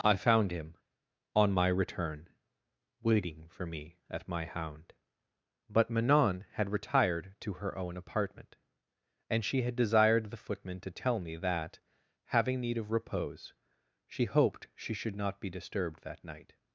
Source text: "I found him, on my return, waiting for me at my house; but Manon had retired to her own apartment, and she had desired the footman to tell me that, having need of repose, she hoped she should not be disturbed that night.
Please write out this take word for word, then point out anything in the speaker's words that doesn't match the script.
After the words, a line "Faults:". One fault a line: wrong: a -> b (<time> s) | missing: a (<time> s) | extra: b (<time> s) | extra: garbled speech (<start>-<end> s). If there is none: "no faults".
"I found him, on my return, waiting for me at my hound; but Manon had retired to her own apartment, and she had desired the footman to tell me that, having need of repose, she hoped she should not be disturbed that night.
Faults:
wrong: house -> hound (4.4 s)